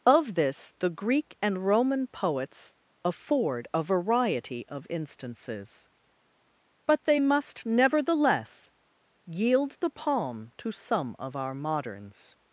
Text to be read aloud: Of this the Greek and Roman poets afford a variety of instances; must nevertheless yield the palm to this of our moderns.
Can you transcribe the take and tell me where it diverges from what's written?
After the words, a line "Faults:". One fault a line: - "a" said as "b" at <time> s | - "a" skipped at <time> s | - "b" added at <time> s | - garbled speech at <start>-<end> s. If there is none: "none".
Of this the Greek and Roman poets afford a variety of instances; but they must nevertheless yield the palm to some of our moderns.
Faults:
- "but they" added at 6.9 s
- "this" said as "some" at 10.7 s